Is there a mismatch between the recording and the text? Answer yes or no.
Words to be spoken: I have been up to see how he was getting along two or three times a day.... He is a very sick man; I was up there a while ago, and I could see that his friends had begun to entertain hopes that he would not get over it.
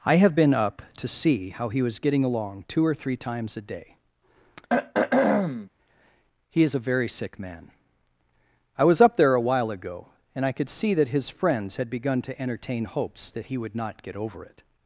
no